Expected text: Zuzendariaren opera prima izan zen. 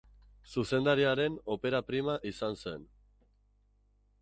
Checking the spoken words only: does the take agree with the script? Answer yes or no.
yes